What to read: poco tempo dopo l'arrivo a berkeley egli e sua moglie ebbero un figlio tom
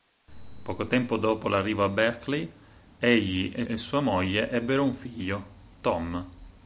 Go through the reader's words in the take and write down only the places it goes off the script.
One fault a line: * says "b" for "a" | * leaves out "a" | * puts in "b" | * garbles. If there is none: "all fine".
* puts in "e"